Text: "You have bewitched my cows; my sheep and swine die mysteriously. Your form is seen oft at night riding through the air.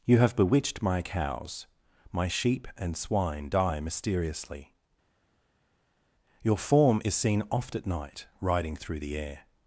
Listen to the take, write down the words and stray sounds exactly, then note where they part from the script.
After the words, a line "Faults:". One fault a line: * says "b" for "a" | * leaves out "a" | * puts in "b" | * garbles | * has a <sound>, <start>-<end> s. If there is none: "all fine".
"You have bewitched my cows; my sheep and swine die mysteriously. Your form is seen oft at night riding through the air.
Faults:
all fine